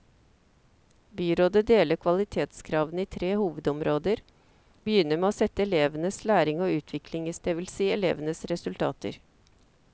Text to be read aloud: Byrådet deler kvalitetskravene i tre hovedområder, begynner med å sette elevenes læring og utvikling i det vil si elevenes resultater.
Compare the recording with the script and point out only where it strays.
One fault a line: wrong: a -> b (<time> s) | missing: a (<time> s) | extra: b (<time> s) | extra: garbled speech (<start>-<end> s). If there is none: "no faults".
no faults